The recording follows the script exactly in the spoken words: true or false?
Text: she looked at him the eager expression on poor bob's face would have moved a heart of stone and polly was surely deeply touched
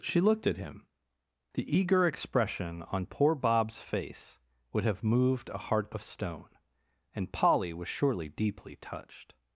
true